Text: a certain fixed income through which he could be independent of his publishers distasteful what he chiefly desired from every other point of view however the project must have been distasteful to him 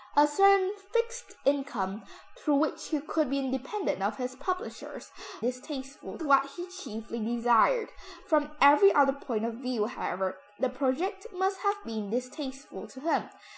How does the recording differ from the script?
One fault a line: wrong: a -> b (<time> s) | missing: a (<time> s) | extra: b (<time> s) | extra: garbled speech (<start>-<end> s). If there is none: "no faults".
no faults